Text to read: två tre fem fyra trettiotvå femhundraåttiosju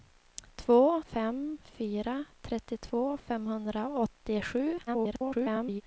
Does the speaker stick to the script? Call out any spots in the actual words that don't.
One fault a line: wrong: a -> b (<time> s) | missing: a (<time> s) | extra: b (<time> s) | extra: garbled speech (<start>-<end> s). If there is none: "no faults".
missing: tre (1.0 s)
extra: garbled speech (4.9-5.8 s)